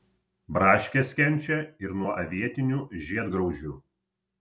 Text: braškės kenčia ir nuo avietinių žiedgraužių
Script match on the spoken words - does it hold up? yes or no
yes